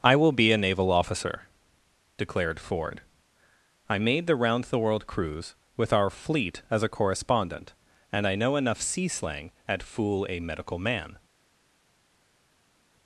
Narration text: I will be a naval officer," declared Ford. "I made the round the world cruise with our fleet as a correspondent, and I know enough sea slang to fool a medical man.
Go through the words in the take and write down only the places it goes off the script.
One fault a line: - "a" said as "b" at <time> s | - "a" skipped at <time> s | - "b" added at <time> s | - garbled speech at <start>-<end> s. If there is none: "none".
- "to" said as "at" at 9.7 s